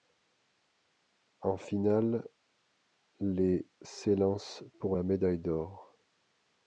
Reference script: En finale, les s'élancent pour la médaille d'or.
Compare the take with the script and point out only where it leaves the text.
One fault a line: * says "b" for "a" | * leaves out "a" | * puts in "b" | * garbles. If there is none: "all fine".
all fine